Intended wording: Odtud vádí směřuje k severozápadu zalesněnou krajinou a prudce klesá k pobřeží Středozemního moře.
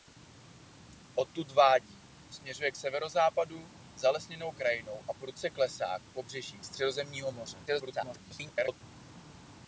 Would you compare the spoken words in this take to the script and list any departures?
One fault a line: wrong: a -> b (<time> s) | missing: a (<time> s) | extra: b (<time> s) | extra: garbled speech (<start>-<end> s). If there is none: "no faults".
extra: garbled speech (7.7-8.8 s)